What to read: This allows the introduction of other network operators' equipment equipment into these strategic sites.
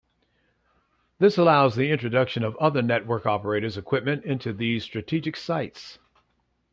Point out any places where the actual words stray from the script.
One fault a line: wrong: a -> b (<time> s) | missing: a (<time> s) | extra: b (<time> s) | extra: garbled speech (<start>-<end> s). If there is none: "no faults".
missing: equipment (4.2 s)